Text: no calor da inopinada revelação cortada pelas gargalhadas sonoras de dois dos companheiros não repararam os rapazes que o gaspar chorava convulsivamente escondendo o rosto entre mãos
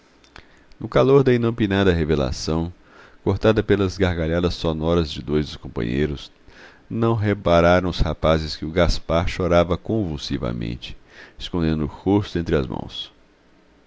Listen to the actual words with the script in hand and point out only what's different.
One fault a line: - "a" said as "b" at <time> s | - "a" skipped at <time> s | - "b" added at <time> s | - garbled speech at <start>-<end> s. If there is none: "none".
- "as" added at 12.5 s